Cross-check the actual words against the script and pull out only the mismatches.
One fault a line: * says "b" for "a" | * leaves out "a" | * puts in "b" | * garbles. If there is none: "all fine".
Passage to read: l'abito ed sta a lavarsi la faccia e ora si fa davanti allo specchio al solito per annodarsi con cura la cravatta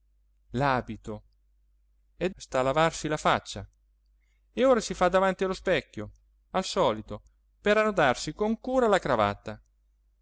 all fine